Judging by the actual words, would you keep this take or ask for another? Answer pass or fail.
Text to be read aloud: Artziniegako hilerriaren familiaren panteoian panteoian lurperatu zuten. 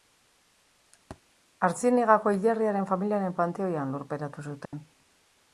fail